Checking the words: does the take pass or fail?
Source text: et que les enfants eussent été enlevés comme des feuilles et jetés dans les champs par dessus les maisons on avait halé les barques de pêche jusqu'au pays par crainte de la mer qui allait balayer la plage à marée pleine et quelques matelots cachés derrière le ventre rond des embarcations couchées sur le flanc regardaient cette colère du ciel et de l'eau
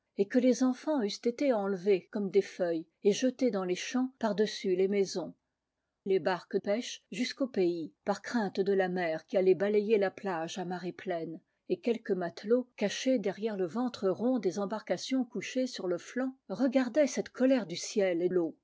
fail